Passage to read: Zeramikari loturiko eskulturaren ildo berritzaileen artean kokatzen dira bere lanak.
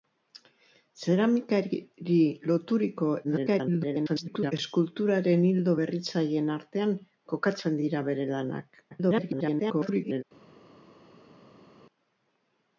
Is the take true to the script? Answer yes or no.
no